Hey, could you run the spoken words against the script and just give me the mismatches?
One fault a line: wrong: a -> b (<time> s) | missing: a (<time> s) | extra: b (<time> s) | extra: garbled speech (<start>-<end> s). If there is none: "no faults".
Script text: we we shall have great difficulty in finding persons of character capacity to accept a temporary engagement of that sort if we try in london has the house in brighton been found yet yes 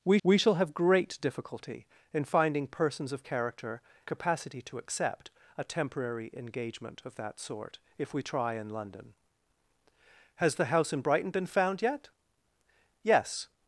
no faults